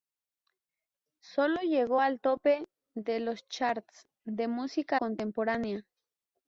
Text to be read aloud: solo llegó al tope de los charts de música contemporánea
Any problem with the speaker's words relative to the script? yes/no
no